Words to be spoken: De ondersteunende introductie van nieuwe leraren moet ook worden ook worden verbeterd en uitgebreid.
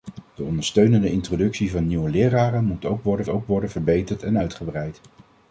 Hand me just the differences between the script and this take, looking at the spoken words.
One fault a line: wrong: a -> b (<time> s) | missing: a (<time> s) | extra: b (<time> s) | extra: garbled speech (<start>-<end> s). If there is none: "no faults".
no faults